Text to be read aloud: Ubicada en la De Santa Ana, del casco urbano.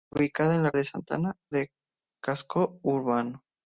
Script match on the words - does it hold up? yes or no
yes